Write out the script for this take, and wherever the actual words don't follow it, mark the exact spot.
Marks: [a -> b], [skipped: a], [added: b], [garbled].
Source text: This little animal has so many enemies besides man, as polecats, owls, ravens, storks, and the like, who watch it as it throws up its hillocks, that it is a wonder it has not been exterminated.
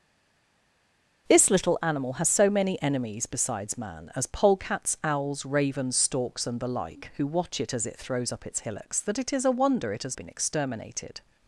This little animal has so many enemies besides man, as polecats, owls, ravens, storks, and the like, who watch it as it throws up its hillocks, that it is a wonder it has [skipped: not] been exterminated.